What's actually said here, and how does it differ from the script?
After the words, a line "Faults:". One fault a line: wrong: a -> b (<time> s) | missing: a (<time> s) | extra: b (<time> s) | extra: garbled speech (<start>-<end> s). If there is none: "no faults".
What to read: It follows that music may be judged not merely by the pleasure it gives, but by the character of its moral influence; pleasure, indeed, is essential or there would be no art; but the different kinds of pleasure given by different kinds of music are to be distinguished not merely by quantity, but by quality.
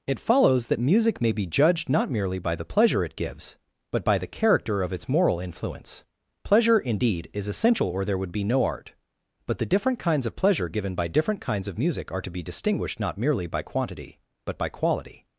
It follows that music may be judged not merely by the pleasure it gives, but by the character of its moral influence; pleasure, indeed, is essential or there would be no art; but the different kinds of pleasure given by different kinds of music are to be distinguished not merely by quantity, but by quality.
Faults:
no faults